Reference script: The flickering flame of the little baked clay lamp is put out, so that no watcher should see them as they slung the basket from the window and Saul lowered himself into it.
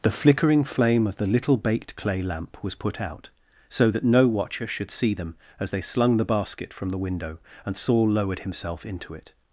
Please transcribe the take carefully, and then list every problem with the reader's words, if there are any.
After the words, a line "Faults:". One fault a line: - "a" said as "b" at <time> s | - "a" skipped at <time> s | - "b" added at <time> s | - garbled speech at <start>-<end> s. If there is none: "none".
The flickering flame of the little baked clay lamp was put out, so that no watcher should see them as they slung the basket from the window and Saul lowered himself into it.
Faults:
- "is" said as "was" at 2.6 s